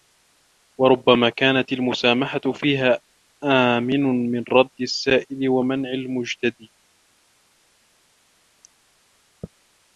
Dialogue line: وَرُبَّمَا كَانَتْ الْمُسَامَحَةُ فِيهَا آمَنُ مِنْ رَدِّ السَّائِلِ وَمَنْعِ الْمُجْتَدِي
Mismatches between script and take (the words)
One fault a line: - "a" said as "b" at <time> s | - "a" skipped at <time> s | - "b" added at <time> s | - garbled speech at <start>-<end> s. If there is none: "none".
none